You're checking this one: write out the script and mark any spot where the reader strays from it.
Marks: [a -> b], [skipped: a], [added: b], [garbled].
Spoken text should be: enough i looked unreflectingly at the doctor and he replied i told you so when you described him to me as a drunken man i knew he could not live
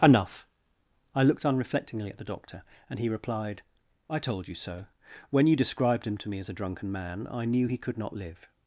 enough i looked unreflectingly at the doctor and he replied i told you so when you described him to me as a drunken man i knew he could not live